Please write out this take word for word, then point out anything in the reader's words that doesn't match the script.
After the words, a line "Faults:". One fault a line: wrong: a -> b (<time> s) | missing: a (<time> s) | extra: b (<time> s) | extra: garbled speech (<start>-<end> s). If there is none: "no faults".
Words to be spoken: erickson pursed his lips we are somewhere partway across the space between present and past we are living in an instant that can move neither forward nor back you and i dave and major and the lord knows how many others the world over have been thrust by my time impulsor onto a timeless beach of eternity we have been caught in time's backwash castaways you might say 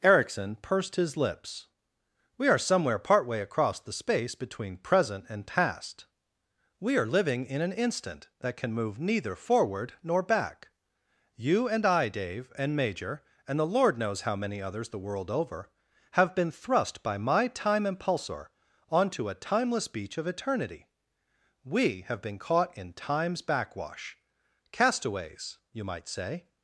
erickson pursed his lips we are somewhere partway across the space between present and past we are living in an instant that can move neither forward nor back you and i dave and major and the lord knows how many others the world over have been thrust by my time impulsor onto a timeless beach of eternity we have been caught in time's backwash castaways you might say
Faults:
no faults